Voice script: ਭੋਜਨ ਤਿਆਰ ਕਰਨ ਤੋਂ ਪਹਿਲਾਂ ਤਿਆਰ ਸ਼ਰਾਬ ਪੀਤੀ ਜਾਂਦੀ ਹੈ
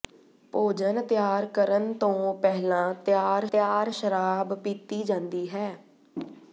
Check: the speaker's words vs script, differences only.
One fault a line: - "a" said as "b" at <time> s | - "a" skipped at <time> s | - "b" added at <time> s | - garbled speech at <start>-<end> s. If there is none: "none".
- "ਤਿਆਰ" added at 3.5 s